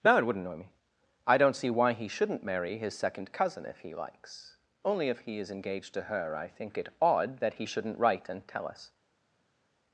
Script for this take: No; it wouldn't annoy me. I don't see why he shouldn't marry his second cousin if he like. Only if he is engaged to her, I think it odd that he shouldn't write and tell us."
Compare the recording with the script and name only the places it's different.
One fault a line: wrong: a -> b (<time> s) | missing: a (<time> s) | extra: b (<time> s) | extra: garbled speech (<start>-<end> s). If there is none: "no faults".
wrong: like -> likes (3.9 s)